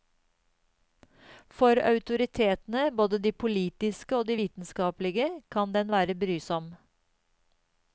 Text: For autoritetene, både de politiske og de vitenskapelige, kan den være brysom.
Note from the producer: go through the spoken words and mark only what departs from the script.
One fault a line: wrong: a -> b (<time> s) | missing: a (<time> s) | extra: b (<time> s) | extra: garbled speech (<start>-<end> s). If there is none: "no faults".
no faults